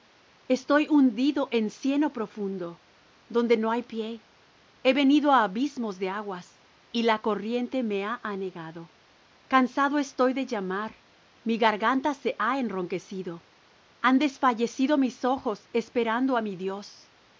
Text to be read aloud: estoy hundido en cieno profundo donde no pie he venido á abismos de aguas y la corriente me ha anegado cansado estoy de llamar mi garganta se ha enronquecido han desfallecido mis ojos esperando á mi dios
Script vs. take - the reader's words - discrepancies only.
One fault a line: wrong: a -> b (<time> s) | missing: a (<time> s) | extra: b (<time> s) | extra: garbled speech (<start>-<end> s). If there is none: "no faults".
extra: hay (3.7 s)